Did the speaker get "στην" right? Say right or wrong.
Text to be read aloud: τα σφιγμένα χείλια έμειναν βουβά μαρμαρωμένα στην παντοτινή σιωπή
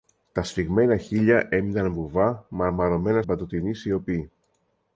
wrong